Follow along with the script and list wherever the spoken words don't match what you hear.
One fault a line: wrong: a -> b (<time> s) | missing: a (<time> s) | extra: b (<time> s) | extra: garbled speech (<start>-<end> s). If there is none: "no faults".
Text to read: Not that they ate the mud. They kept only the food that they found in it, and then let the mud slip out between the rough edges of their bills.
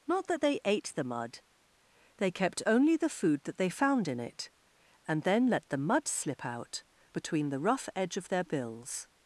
wrong: edges -> edge (7.9 s)